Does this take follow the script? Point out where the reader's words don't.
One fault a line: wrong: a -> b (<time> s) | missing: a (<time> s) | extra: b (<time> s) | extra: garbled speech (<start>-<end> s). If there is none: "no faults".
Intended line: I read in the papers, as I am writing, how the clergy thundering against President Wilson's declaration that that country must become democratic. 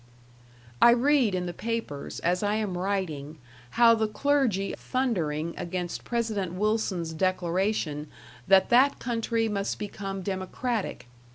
no faults